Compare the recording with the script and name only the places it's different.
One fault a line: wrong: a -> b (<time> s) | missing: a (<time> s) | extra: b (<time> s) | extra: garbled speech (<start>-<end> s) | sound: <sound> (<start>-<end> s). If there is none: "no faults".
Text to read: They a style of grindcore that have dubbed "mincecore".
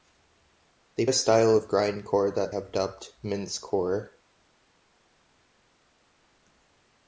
no faults